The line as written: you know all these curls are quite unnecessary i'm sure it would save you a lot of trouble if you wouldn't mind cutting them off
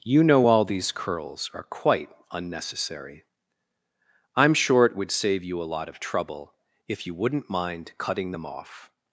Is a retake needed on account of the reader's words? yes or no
no